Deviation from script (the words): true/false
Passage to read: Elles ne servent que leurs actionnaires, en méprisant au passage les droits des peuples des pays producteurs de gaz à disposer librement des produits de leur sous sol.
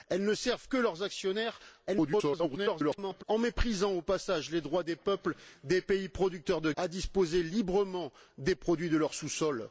true